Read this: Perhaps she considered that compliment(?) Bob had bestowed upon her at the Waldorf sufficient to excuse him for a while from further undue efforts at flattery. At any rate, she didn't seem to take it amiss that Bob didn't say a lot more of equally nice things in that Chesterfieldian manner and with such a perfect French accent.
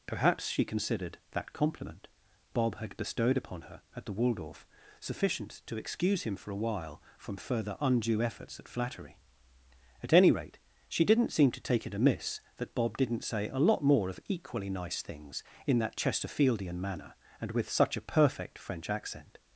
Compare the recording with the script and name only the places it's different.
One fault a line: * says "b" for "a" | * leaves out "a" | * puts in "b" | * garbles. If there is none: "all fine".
all fine